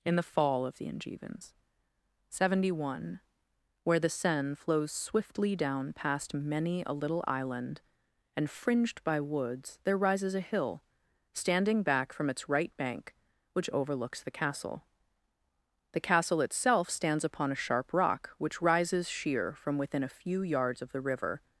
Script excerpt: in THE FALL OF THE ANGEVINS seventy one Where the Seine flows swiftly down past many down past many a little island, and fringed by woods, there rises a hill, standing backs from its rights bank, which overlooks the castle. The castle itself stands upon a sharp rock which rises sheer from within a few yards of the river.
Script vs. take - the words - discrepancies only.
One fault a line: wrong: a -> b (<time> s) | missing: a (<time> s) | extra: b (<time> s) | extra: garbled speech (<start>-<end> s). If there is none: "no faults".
missing: down past many (6.8 s)
wrong: backs -> back (11.8 s)
wrong: rights -> right (12.5 s)